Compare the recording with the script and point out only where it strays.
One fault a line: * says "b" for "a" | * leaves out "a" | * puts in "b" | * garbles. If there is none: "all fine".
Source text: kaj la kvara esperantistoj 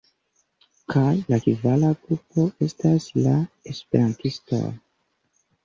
* puts in "grupo estas la"